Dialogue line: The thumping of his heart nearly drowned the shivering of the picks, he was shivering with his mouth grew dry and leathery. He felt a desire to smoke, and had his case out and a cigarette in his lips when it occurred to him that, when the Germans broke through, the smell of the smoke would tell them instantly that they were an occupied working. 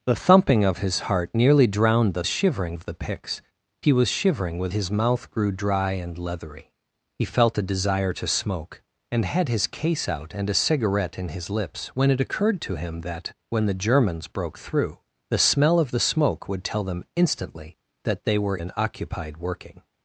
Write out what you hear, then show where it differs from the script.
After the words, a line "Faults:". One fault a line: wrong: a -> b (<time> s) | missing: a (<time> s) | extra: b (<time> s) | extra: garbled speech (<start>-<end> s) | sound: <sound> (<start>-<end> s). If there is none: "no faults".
The thumping of his heart nearly drowned the shivering of the picks, he was shivering with his mouth grew dry and leathery. He felt a desire to smoke, and had his case out and a cigarette in his lips when it occurred to him that, when the Germans broke through, the smell of the smoke would tell them instantly that they were an occupied working.
Faults:
no faults